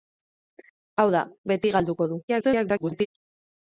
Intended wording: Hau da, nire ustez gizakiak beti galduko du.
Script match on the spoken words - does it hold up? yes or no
no